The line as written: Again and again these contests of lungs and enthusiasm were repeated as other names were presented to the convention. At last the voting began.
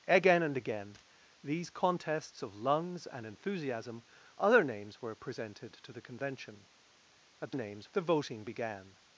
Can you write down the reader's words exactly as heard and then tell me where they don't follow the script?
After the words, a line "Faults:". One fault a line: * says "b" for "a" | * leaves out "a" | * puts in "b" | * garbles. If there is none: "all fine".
Again and again these contests of lungs and enthusiasm other names were presented to the convention. At names the voting began.
Faults:
* leaves out "were repeated as"
* says "names" for "last"